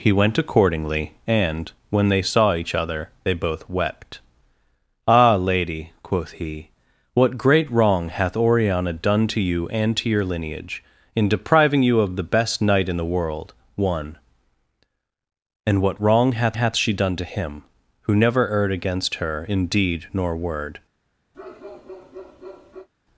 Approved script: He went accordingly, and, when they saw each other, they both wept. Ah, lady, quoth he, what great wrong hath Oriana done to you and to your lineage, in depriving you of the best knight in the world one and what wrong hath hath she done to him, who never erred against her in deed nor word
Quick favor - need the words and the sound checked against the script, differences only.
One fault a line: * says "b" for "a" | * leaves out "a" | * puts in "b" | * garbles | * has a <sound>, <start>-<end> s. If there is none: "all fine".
* has a bark, 21.3-22.9 s